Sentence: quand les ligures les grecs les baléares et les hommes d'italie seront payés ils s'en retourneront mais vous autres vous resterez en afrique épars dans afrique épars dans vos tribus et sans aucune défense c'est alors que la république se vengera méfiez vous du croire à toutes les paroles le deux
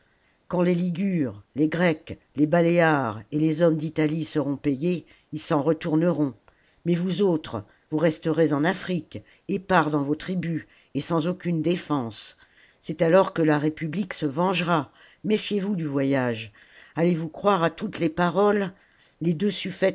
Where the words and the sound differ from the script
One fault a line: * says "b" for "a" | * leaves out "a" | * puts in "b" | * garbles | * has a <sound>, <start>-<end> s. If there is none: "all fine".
* leaves out "afrique épars dans"
* puts in "voyage allez vous"
* says "les" for "le"